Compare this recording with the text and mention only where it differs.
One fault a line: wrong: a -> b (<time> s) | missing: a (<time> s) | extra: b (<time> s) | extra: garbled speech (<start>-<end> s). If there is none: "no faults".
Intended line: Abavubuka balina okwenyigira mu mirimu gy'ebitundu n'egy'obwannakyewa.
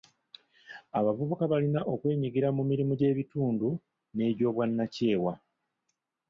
no faults